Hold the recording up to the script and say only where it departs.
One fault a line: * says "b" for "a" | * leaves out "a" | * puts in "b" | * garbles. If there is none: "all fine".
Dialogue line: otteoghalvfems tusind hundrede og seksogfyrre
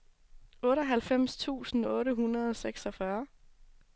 * puts in "otte"